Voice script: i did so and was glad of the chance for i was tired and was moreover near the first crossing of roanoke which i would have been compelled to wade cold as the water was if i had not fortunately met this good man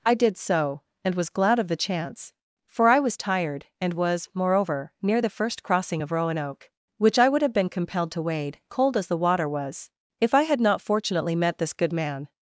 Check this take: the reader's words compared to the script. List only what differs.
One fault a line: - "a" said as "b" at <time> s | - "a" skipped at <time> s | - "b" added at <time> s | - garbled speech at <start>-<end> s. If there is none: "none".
none